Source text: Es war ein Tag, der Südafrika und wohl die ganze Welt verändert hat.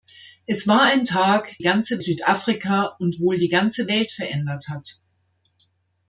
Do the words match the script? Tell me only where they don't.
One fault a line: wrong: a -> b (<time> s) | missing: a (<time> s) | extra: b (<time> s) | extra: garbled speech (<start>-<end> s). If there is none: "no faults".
wrong: der -> ganze (1.6 s)